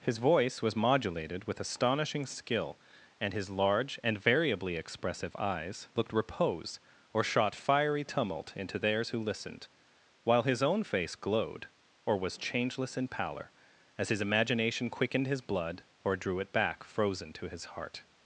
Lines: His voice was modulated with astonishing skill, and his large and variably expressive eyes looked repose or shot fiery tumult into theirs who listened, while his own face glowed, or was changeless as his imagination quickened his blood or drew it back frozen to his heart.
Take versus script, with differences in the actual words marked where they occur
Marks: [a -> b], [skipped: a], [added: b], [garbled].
His voice was modulated with astonishing skill, and his large and variably expressive eyes looked repose or shot fiery tumult into theirs who listened, while his own face glowed, or was changeless [added: in pallor] as his imagination quickened his blood or drew it back frozen to his heart.